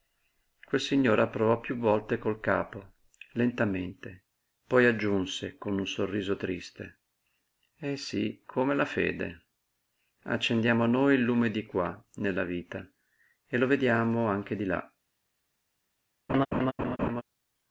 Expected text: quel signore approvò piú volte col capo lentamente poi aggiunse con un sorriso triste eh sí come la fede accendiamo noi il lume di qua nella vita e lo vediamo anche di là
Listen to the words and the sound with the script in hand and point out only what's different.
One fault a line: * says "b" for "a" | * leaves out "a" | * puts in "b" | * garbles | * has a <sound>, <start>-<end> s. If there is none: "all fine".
* has a laugh, 16.3-17.2 s